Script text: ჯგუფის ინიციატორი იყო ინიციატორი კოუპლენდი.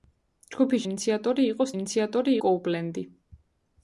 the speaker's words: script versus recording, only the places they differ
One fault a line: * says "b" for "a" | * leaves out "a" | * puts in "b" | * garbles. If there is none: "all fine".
all fine